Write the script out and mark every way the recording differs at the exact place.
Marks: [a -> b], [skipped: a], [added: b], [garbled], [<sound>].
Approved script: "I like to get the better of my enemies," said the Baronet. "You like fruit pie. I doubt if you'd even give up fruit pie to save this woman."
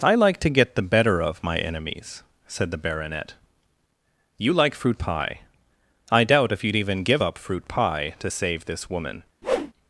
"I like to get the better of my enemies," said the Baronet. "You like fruit pie. I doubt if you'd even give up fruit pie to save this woman." [whoosh]